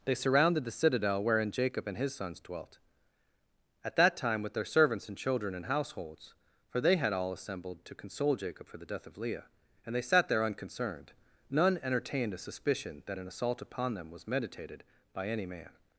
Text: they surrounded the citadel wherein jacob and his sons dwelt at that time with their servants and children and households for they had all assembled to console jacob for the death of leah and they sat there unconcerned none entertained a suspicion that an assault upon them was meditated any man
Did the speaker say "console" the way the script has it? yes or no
yes